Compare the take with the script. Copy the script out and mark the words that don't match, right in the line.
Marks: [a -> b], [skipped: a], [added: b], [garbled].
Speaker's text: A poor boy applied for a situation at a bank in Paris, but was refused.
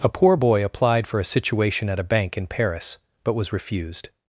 A poor boy applied for a situation at a bank in Paris, but was refused.